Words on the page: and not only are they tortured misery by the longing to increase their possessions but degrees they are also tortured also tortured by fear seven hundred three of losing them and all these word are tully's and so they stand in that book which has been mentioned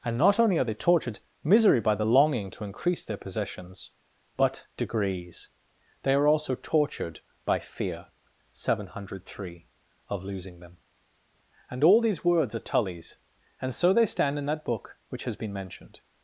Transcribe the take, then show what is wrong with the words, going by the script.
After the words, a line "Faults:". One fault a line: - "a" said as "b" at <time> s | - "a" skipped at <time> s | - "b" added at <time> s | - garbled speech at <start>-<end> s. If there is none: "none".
and not only are they tortured misery by the longing to increase their possessions but degrees they are also tortured by fear seven hundred three of losing them and all these words are tully's and so they stand in that book which has been mentioned
Faults:
- "also tortured" skipped at 7.2 s
- "word" said as "words" at 12.3 s